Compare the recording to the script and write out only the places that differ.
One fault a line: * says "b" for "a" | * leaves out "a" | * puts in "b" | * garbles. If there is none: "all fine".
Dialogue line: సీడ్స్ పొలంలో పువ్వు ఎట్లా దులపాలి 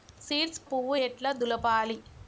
* leaves out "పొలంలో"